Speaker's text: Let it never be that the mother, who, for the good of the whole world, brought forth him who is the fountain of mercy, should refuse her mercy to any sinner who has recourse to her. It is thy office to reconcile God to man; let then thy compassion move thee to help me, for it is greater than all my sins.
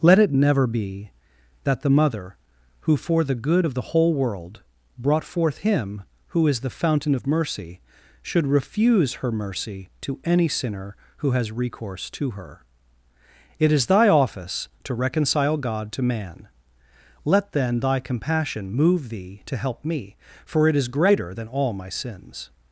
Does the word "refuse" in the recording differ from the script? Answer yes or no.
no